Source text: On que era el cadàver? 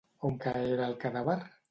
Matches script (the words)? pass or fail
pass